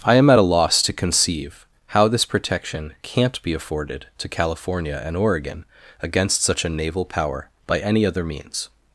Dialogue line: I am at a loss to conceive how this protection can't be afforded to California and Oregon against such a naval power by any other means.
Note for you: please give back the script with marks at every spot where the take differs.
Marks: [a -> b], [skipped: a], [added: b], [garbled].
I am at a loss to conceive how this protection can't be afforded to California and Oregon against such a naval power by any other means.